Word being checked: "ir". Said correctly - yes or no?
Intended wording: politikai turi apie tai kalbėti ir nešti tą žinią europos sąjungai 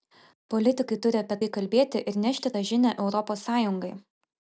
yes